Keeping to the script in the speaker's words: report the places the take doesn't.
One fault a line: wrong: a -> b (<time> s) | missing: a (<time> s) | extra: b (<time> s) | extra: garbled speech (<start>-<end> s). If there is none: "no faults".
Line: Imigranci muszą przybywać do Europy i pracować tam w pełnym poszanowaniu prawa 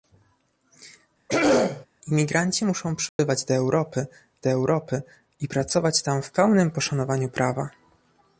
extra: do Europy (4.4 s)